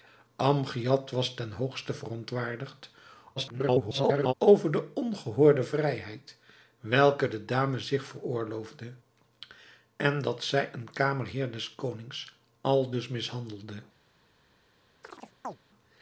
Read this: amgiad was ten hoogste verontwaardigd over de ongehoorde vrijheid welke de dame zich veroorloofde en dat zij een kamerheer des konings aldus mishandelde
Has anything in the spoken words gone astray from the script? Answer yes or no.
yes